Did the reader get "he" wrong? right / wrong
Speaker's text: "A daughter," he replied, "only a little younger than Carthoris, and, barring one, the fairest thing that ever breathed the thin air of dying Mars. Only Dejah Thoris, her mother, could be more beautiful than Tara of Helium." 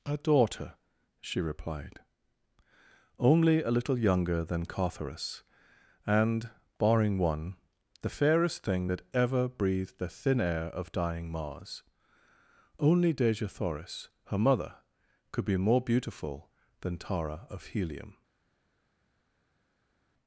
wrong